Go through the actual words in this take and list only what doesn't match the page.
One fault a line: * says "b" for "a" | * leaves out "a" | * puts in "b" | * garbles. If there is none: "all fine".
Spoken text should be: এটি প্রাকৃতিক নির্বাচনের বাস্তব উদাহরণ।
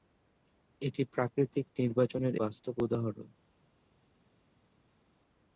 all fine